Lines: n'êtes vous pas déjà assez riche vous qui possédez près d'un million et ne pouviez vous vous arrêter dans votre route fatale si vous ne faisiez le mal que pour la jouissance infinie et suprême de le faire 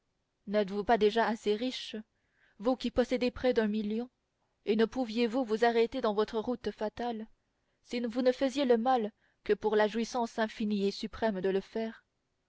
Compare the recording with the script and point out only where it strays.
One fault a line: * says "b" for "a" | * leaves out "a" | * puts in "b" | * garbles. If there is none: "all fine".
all fine